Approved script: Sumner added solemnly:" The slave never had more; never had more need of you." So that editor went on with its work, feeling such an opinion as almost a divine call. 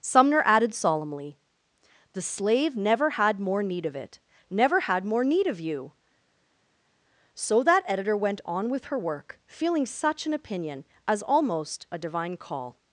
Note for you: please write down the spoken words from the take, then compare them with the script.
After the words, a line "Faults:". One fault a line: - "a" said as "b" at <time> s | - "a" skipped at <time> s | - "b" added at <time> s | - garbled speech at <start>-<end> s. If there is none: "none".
Sumner added solemnly:" The slave never had more need of it; never had more need of you." So that editor went on with her work, feeling such an opinion as almost a divine call.
Faults:
- "need of it" added at 3.6 s
- "its" said as "her" at 8.9 s